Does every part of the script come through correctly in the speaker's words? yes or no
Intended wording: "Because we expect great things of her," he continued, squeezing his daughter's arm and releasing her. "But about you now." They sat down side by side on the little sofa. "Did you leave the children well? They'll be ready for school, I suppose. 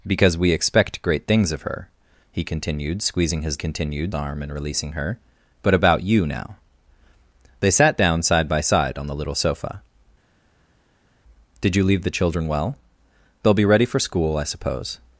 no